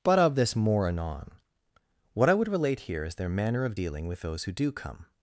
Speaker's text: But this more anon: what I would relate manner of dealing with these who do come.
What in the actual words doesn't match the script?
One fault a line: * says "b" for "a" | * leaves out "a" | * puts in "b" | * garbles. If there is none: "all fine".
* puts in "of"
* puts in "here is their"
* says "those" for "these"